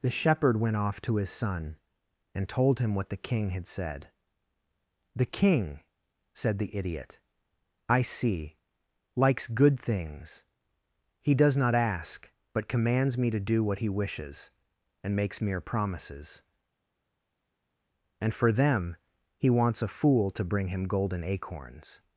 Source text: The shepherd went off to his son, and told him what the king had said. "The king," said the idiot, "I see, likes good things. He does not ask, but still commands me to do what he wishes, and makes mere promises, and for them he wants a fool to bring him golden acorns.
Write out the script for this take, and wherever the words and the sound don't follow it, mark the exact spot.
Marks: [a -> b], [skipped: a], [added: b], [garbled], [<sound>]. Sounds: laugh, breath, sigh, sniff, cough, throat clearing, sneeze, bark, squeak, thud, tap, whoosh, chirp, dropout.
The shepherd went off to his son, and told him what the king had said. "The king," said the idiot, "I see, likes good things. He does not ask, but [skipped: still] commands me to do what he wishes, and makes mere promises, and for them he wants a fool to bring him golden acorns.